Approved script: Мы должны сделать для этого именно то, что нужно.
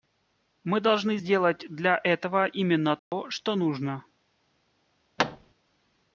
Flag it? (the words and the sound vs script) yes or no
yes